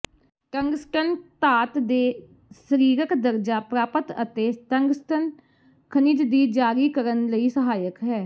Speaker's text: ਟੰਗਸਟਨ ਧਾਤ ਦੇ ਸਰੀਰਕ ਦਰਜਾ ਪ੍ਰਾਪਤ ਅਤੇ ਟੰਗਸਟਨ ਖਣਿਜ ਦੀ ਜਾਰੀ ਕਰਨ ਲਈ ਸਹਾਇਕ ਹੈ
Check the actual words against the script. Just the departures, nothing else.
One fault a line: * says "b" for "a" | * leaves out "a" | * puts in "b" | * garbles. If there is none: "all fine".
all fine